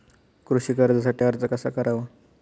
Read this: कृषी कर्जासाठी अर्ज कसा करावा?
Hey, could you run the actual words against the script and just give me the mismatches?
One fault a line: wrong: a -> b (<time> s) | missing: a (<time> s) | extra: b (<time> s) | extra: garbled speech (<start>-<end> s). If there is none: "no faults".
no faults